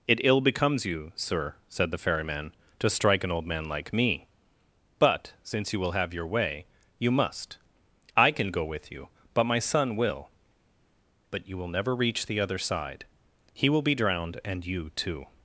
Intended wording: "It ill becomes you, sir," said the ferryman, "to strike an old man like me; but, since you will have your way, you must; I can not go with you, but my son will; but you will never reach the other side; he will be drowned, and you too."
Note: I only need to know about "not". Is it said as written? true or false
false